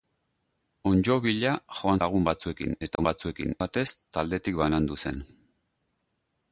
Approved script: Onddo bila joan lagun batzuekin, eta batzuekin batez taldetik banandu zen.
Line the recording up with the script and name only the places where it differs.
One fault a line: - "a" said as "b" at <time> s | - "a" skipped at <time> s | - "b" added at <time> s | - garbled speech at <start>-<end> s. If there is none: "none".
none